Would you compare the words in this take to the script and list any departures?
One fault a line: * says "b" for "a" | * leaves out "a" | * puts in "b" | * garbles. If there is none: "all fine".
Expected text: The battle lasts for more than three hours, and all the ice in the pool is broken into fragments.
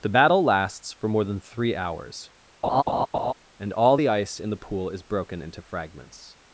all fine